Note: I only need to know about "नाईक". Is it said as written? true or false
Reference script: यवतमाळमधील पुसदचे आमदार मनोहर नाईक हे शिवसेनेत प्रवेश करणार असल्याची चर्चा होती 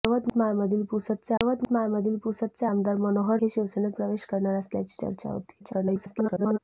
false